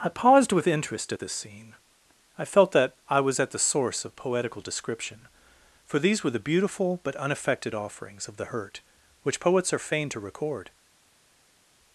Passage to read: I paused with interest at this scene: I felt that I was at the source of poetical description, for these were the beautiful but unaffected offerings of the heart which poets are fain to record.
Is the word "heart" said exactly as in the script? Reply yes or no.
no